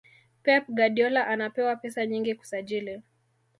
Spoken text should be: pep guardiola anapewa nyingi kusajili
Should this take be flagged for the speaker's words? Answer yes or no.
yes